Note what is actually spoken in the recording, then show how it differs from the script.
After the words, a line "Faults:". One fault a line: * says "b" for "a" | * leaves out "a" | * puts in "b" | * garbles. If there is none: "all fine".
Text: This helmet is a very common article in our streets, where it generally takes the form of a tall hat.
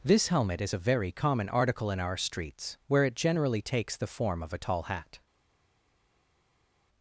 This helmet is a very common article in our streets, where it generally takes the form of a tall hat.
Faults:
all fine